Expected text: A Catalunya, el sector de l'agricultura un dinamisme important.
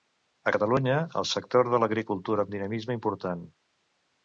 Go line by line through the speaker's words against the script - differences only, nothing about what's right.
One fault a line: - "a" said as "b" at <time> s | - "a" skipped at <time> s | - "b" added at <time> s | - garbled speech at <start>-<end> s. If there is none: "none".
none